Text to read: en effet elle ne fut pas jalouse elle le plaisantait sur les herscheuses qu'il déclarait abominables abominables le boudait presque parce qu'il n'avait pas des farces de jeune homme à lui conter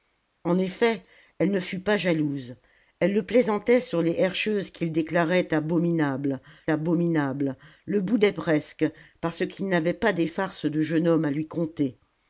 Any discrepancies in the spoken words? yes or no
no